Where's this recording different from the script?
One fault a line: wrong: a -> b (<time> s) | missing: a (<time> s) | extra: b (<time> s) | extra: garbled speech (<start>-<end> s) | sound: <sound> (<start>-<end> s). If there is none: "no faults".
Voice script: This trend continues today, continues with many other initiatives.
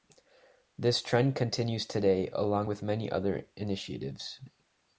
wrong: continues -> along (2.3 s)